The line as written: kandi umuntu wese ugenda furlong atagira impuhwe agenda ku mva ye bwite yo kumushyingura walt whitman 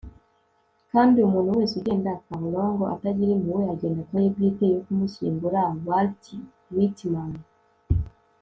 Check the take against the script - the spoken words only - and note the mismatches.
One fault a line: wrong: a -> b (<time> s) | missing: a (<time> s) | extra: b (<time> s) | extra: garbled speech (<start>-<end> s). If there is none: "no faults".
missing: mva (4.2 s)